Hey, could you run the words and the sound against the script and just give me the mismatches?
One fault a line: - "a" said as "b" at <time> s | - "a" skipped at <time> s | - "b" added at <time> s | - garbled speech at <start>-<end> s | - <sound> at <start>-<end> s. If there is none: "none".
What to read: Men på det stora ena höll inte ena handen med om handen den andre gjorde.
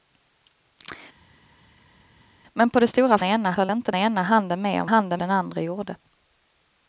none